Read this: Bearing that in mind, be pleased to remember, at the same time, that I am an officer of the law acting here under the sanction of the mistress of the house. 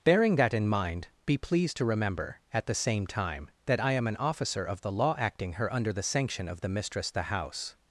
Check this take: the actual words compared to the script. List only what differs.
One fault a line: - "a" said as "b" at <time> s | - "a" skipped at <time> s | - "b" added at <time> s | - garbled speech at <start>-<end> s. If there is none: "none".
- "here" said as "her" at 5.5 s
- "of" skipped at 7.1 s